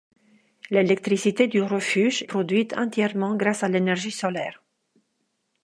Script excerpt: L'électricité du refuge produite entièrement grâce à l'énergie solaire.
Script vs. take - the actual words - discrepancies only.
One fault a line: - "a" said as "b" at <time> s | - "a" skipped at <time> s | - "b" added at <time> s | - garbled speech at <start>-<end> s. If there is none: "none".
none